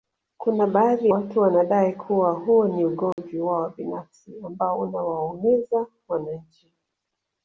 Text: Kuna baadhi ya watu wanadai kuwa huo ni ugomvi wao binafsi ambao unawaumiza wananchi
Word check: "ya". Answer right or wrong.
wrong